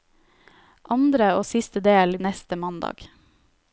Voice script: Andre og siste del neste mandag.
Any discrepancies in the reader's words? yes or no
no